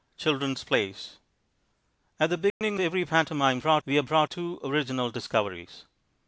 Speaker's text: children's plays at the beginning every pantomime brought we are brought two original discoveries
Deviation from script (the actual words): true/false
false